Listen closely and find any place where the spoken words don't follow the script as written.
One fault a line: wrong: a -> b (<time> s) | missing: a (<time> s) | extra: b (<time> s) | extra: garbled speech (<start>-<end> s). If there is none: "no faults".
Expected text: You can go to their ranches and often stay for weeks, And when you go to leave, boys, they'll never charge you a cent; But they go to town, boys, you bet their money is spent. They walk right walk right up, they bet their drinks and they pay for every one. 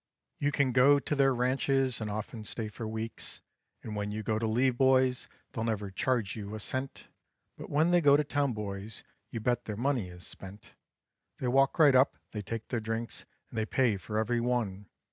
extra: when (7.7 s)
missing: walk right (12.0 s)
wrong: bet -> take (12.4 s)